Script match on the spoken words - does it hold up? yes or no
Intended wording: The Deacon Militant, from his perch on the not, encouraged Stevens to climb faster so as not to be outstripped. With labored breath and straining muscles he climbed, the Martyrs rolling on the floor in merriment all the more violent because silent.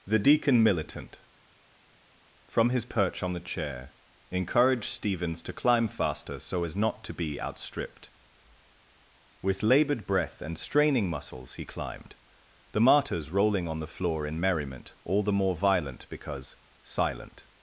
no